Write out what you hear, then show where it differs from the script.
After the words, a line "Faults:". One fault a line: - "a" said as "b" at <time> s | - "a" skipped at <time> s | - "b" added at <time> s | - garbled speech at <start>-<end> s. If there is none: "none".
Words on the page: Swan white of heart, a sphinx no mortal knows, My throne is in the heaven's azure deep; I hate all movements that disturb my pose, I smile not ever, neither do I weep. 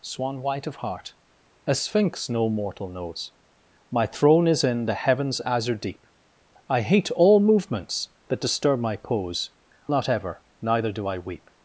Swan white of heart, a sphinx no mortal knows, My throne is in the heaven's azure deep; I hate all movements that disturb my pose, not ever, neither do I weep.
Faults:
- "I smile" skipped at 9.5 s